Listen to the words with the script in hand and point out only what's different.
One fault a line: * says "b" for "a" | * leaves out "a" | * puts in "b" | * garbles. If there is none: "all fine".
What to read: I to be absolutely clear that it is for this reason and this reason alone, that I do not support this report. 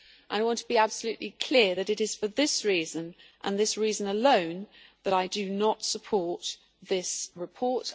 * puts in "want"